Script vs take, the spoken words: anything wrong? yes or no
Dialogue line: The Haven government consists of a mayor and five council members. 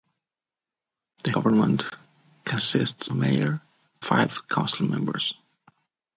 yes